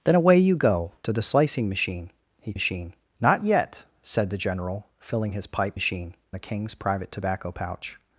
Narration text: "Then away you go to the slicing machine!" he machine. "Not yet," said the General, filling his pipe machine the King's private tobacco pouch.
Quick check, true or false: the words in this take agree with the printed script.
true